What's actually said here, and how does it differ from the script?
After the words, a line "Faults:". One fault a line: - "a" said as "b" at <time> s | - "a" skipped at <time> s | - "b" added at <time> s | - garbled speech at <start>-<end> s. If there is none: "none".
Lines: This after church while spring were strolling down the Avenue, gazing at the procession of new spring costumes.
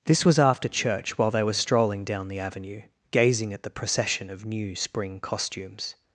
This was after church while they were strolling down the Avenue, gazing at the procession of new spring costumes.
Faults:
- "was" added at 0.3 s
- "spring" said as "they" at 1.3 s